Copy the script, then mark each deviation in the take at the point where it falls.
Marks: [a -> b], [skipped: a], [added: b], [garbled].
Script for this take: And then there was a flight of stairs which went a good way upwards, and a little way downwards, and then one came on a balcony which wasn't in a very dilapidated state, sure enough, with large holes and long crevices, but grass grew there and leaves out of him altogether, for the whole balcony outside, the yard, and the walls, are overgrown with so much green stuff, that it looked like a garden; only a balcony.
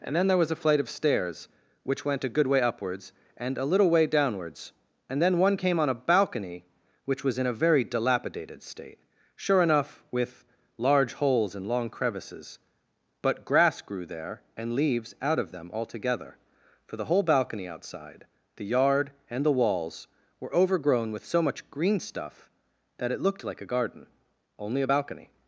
And then there was a flight of stairs which went a good way upwards, and a little way downwards, and then one came on a balcony which [wasn't -> was] in a very dilapidated state, sure enough, with large holes and long crevices, but grass grew there and leaves out of [him -> them] altogether, for the whole balcony outside, the yard, and the walls, [are -> were] overgrown with so much green stuff, that it looked like a garden; only a balcony.